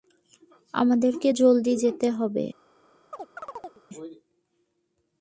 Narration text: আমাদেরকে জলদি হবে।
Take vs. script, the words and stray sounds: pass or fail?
fail